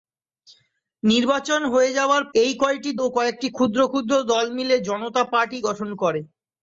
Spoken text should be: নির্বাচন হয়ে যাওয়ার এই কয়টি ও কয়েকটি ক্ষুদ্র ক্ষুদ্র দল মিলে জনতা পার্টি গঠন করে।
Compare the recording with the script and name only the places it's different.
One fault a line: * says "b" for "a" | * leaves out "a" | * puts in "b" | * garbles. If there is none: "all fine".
all fine